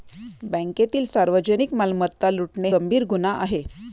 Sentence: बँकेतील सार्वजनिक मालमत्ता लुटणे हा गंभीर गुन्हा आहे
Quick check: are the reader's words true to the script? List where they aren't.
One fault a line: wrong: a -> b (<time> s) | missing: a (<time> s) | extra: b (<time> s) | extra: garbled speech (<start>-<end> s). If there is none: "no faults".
missing: हा (2.7 s)